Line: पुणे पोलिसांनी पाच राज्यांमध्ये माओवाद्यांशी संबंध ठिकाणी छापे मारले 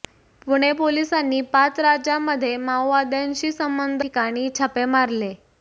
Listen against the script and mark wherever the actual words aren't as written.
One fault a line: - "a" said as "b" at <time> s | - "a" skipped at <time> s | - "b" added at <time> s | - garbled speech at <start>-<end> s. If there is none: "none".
none